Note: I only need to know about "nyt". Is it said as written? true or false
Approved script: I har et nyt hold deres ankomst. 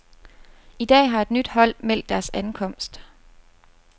true